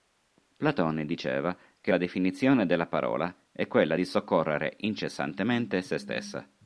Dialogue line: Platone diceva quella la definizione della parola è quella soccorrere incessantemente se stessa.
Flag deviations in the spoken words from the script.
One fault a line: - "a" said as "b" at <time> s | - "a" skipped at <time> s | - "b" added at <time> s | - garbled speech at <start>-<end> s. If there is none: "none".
- "quella" said as "che" at 1.8 s
- "di" added at 3.9 s